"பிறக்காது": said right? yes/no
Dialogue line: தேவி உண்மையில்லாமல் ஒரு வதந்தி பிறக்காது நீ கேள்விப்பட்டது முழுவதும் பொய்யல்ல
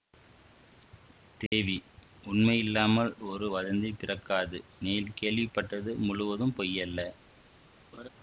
yes